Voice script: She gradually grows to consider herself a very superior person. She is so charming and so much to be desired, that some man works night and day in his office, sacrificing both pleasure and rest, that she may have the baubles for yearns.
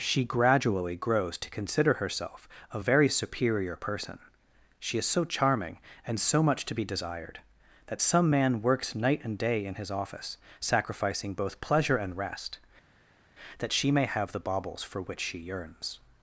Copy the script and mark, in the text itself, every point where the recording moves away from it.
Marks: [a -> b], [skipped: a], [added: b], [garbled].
She gradually grows to consider herself a very superior person. She is so charming and so much to be desired, that some man works night and day in his office, sacrificing both pleasure and rest, that she may have the baubles for [added: which she] yearns.